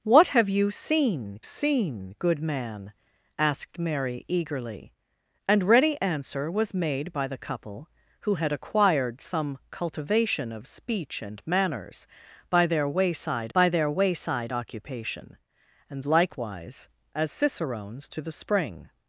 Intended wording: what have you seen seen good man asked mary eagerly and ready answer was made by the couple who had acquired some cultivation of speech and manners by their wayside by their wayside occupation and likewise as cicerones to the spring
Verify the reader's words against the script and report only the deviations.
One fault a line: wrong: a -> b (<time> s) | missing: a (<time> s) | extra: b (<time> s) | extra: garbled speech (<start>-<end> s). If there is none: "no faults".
no faults